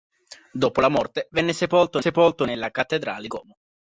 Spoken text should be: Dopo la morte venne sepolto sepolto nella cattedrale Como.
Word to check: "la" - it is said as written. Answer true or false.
true